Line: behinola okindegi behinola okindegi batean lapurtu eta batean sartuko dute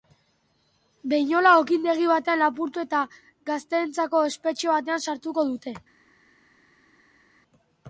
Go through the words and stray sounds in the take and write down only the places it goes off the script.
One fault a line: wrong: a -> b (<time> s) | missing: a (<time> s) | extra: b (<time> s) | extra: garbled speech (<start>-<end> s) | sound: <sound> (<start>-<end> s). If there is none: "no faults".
missing: behinola okindegi (2.1 s)
extra: gazteentzako espetxe (3.5 s)